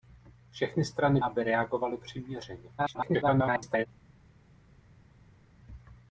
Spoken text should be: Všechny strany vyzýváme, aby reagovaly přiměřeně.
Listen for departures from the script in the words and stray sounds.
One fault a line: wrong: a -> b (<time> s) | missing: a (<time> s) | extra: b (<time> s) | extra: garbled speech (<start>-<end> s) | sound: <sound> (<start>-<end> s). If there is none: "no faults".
missing: vyzýváme (1.2 s)
extra: garbled speech (2.8-3.9 s)